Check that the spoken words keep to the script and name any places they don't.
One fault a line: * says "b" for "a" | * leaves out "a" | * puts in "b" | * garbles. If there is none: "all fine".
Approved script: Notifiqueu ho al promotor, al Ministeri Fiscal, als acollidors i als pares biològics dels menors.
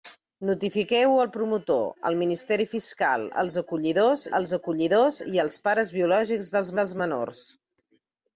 * puts in "als acollidors"
* puts in "dels"